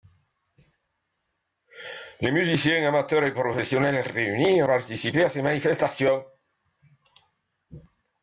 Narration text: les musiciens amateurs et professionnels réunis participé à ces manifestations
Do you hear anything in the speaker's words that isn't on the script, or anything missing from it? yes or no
no